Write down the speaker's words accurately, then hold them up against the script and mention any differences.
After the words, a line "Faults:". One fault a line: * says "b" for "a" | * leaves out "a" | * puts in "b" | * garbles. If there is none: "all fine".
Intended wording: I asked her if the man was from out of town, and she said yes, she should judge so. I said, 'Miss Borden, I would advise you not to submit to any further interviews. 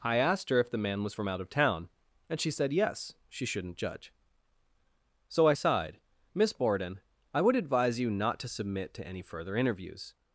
I asked her if the man was from out of town, and she said yes, she shouldn't judge so. I sighed, 'Miss Borden, I would advise you not to submit to any further interviews.
Faults:
* says "shouldn't" for "should"
* says "sighed" for "said"